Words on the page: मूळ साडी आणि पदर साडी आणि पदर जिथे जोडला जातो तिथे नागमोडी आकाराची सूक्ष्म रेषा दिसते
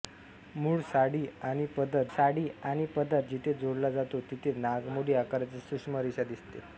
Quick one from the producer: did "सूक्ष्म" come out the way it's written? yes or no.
yes